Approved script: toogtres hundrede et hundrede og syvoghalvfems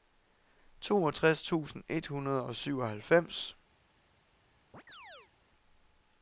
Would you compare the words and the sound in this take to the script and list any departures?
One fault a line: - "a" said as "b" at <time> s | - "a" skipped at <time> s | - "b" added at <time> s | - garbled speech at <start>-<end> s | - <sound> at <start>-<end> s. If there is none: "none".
- "hundrede" said as "tusind" at 1.4 s
- chirp at 4.7-5.3 s